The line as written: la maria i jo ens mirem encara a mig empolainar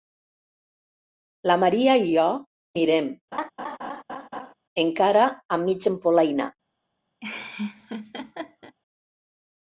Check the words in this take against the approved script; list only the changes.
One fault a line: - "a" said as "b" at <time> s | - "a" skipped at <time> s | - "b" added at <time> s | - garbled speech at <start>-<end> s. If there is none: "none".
- "ens" skipped at 2.2 s